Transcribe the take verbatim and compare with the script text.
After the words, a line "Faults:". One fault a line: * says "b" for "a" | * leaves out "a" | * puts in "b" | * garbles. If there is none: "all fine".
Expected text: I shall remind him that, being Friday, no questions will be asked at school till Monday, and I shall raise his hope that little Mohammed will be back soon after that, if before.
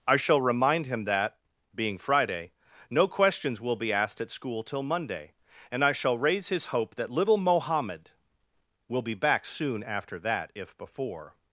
I shall remind him that, being Friday, no questions will be asked at school till Monday, and I shall raise his hope that little Mohammed will be back soon after that, if before.
Faults:
all fine